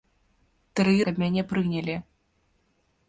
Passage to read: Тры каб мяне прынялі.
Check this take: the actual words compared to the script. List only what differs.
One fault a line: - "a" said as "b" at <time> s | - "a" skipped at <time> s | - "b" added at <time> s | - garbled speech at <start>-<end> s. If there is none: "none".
none